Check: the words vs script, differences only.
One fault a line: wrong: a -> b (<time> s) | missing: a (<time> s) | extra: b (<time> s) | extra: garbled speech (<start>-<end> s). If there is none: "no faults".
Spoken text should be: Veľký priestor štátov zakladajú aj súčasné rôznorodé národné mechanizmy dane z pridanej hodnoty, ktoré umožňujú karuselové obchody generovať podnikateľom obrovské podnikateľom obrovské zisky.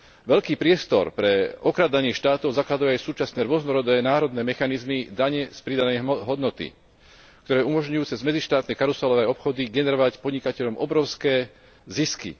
extra: pre okrádanie (1.1 s)
extra: cez medzištátne (8.0 s)
missing: podnikateľom obrovské (11.5 s)